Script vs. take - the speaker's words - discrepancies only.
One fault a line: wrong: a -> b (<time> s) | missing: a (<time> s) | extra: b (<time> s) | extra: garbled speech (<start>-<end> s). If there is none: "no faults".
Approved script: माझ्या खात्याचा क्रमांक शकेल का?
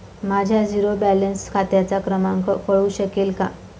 extra: झिरो बॅलन्स (0.6 s)
extra: कळू (2.7 s)